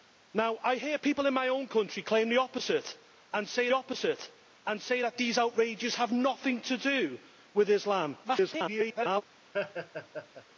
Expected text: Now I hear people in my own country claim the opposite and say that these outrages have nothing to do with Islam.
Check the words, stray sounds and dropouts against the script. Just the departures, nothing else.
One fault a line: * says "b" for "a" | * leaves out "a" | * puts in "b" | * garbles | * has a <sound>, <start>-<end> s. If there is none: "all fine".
* puts in "opposite and say"
* garbles
* has a laugh, 9.5-10.4 s